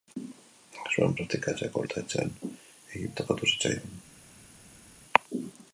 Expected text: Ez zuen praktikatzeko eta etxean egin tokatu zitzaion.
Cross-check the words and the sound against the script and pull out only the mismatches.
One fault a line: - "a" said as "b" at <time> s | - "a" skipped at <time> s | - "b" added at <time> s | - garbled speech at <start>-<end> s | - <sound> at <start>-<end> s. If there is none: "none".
none